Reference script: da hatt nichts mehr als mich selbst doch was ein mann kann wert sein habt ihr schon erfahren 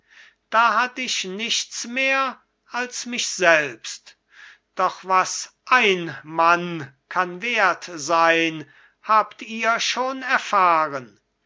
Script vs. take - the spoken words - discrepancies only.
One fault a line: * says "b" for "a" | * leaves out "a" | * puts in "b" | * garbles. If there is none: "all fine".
* puts in "ich"